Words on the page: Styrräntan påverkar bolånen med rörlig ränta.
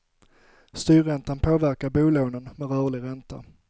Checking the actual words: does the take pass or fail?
pass